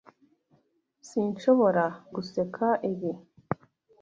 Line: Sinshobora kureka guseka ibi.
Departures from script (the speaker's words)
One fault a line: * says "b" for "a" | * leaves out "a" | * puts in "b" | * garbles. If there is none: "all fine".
* leaves out "kureka"